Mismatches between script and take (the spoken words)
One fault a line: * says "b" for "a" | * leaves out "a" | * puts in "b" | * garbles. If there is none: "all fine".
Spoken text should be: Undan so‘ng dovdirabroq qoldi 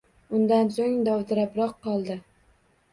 all fine